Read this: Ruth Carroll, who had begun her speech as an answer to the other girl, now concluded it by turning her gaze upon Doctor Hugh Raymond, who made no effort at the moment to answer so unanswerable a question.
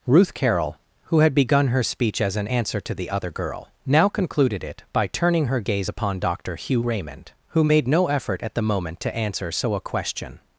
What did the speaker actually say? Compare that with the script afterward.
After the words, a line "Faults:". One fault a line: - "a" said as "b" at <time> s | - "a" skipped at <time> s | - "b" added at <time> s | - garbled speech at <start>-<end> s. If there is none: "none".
Ruth Carroll, who had begun her speech as an answer to the other girl, now concluded it by turning her gaze upon Doctor Hugh Raymond, who made no effort at the moment to answer so a question.
Faults:
- "unanswerable" skipped at 9.7 s